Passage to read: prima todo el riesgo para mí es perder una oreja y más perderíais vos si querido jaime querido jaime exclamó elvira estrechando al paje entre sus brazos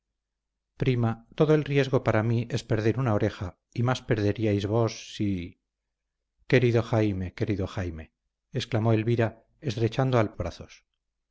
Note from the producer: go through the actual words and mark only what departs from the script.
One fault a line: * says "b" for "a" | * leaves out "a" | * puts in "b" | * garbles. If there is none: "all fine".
* leaves out "paje entre sus"